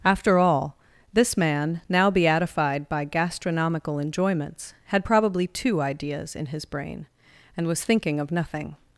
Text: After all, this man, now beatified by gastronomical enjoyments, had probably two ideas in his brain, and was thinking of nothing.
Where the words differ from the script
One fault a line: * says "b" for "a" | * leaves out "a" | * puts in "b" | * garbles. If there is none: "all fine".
all fine